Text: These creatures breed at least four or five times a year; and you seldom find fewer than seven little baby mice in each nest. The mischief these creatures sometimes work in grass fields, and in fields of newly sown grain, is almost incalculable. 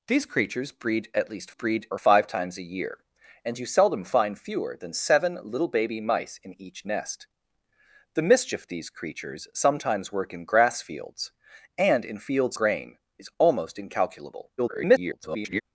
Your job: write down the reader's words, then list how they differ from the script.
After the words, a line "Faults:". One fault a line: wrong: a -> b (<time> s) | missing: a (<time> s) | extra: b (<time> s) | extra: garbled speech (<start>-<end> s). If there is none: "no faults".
These creatures breed at least breed or five times a year; and you seldom find fewer than seven little baby mice in each nest. The mischief these creatures sometimes work in grass fields, and in fields grain, is almost incalculable. [garbled]
Faults:
wrong: four -> breed (1.5 s)
missing: of newly sown (12.6 s)
extra: garbled speech (14.6-15.6 s)